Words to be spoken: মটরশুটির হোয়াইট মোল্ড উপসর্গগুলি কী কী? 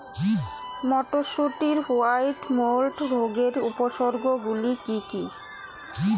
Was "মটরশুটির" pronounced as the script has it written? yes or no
yes